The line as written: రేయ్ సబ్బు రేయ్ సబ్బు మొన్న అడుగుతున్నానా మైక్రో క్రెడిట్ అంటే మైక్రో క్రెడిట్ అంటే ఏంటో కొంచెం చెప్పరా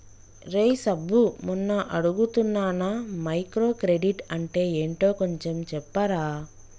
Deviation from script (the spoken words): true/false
true